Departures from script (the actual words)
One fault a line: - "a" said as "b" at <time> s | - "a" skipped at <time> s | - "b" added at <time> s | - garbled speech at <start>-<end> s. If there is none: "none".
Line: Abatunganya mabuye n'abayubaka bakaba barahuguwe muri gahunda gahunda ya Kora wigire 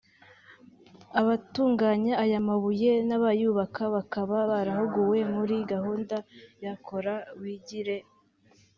- "aya" added at 2.2 s
- "gahunda" skipped at 6.2 s